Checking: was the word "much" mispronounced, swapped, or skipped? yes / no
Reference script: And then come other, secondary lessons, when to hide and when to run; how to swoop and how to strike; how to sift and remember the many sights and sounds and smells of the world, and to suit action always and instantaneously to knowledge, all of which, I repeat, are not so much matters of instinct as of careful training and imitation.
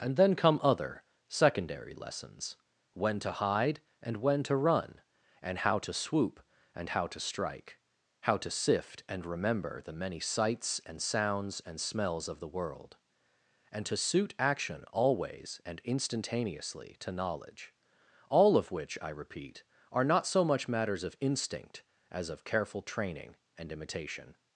no